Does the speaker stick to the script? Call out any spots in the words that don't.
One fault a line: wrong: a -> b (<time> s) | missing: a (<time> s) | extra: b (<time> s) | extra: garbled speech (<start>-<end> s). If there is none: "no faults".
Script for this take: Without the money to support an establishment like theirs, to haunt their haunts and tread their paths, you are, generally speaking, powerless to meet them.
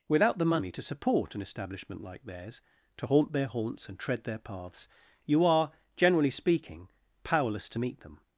no faults